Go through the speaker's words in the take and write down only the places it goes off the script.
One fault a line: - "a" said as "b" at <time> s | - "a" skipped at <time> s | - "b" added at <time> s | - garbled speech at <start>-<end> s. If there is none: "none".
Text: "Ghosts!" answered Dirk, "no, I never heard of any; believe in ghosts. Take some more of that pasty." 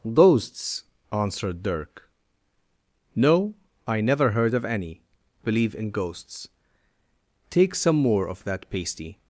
none